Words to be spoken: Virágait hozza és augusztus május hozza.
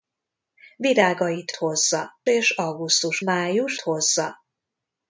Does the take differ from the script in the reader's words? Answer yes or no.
no